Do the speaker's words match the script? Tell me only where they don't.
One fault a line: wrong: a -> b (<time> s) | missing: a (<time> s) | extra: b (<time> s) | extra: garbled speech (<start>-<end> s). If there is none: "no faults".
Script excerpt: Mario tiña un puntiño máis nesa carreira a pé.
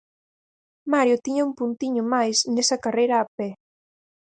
no faults